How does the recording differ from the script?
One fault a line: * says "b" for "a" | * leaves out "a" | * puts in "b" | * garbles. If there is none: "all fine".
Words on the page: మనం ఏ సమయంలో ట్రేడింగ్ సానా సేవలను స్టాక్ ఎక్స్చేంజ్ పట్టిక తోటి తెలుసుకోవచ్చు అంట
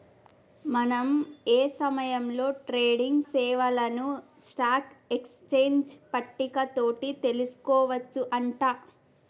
* leaves out "సానా"